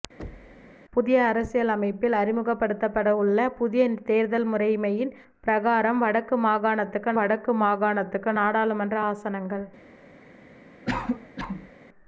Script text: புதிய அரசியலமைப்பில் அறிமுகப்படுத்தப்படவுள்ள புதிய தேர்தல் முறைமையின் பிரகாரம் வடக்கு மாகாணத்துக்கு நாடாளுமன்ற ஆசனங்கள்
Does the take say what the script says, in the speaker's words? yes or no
no